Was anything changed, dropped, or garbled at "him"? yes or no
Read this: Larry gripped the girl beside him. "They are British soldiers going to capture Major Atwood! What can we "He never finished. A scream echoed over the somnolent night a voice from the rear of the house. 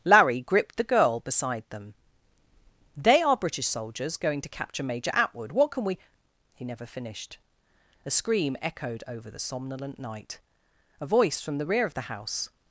yes